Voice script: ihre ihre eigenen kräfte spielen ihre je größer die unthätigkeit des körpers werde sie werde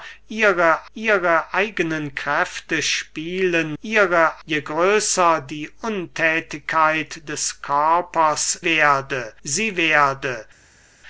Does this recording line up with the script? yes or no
yes